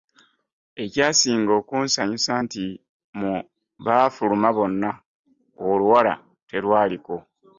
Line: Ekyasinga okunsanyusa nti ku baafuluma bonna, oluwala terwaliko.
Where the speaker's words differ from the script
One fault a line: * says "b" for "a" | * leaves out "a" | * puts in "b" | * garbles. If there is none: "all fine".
* says "mu" for "ku"